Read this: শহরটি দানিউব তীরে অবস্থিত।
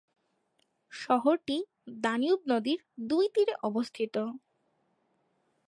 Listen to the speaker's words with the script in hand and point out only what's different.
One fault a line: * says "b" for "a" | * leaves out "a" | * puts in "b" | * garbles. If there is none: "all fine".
* puts in "নদীর দুই"